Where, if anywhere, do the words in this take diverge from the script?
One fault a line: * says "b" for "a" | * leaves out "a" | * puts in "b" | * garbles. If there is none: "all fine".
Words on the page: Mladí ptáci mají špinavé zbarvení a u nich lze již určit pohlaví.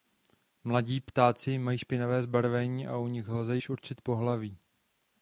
all fine